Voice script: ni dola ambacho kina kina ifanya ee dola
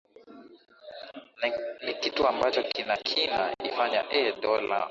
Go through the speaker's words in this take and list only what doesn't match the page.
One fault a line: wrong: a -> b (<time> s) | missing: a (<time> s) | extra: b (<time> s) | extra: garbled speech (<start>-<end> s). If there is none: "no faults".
wrong: dola -> kitu (1.9 s)